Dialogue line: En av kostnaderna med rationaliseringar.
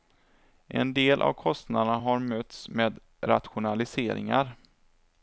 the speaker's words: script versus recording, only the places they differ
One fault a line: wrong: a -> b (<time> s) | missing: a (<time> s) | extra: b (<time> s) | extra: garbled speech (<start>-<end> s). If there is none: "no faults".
extra: del (0.9 s)
extra: har mötts (2.0 s)